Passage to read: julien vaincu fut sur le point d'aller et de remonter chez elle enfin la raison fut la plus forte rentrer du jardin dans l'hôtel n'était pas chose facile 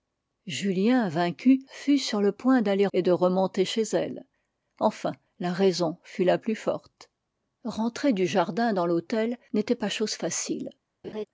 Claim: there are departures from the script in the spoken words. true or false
false